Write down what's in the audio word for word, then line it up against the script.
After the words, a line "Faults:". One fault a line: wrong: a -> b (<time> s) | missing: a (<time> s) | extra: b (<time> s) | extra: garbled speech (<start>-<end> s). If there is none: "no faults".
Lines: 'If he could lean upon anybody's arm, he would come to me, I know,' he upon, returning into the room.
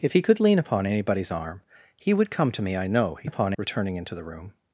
'If he could lean upon anybody's arm, he would come to me, I know,' he upon, returning into the room.
Faults:
no faults